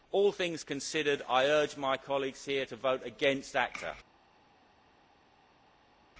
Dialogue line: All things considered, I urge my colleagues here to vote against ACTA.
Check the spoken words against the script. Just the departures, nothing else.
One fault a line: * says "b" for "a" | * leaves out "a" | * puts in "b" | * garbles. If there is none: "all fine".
all fine